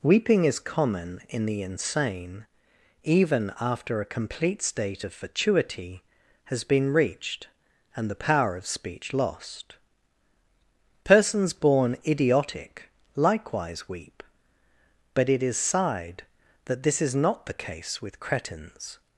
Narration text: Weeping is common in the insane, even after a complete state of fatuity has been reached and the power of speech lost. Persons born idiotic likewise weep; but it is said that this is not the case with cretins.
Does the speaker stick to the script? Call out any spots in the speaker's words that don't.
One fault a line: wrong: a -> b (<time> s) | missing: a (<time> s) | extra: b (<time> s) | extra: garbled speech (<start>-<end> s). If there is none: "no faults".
wrong: said -> sighed (15.6 s)